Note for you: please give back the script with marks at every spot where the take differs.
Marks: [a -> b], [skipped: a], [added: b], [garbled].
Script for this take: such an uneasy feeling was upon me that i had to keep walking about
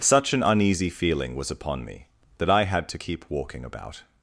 such an uneasy feeling was upon me that i had to keep walking about